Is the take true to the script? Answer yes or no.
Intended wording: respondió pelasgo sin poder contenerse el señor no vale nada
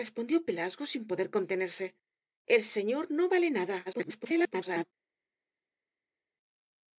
no